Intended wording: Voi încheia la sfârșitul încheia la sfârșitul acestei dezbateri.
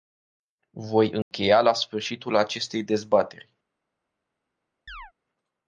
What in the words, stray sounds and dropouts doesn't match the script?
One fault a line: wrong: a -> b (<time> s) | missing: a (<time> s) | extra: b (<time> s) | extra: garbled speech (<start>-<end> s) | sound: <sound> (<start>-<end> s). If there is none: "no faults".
sound: dropout (1.2-1.3 s)
missing: încheia la sfârșitul (2.4 s)
sound: chirp (4.9-5.1 s)